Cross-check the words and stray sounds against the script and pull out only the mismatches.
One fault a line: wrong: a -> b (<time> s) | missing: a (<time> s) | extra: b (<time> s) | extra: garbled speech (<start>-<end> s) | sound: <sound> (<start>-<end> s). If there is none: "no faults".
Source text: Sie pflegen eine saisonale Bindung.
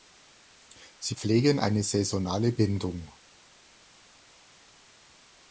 no faults